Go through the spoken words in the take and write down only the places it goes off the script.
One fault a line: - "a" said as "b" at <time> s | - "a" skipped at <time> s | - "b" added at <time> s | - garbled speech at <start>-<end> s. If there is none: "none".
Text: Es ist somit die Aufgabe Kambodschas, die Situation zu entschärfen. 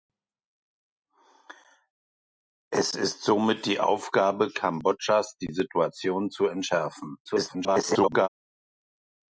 - garbled speech at 7.2-8.3 s